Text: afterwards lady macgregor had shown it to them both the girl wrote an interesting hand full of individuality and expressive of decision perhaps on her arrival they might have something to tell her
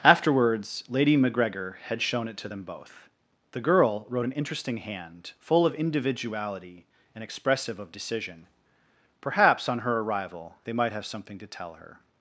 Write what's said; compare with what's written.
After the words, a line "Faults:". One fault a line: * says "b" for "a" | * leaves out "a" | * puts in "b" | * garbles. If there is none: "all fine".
afterwards lady macgregor had shown it to them both the girl wrote an interesting hand full of individuality and expressive of decision perhaps on her arrival they might have something to tell her
Faults:
all fine